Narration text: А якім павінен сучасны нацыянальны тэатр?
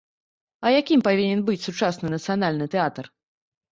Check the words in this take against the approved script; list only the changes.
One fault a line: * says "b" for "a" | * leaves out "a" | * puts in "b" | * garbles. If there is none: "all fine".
* puts in "быць"